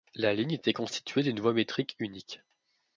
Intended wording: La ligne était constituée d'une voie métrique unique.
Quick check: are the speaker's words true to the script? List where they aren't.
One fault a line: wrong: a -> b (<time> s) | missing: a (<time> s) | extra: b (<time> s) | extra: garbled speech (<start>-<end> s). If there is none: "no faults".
no faults